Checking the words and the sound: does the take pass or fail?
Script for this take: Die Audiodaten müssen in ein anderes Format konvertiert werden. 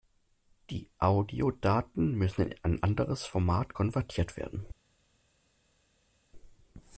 pass